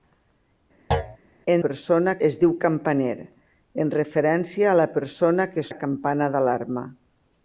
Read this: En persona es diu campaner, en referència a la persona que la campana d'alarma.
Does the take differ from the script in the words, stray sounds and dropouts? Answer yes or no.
yes